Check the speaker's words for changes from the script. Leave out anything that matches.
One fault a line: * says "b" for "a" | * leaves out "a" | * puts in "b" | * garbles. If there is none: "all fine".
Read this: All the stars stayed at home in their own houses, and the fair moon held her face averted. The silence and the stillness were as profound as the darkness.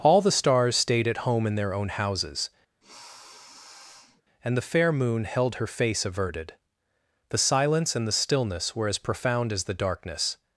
all fine